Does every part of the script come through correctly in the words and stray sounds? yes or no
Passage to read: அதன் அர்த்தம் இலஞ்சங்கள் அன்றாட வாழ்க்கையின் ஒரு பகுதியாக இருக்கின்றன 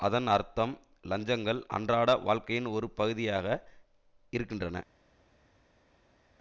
yes